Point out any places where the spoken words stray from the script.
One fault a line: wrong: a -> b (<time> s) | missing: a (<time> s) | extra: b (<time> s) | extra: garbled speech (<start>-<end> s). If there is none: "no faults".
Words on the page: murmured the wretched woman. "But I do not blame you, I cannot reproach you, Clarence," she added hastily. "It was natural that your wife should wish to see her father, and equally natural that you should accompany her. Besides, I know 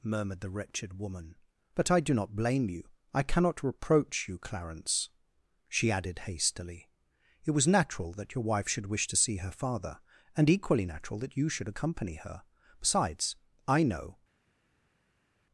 no faults